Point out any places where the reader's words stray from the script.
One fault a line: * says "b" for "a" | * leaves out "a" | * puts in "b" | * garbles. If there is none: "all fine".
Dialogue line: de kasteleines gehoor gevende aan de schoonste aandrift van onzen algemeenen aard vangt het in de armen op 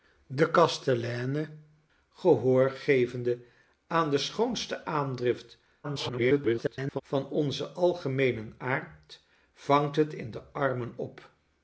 * garbles